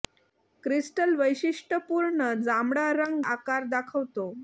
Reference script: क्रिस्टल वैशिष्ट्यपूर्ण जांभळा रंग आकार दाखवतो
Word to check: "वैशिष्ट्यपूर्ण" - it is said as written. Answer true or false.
true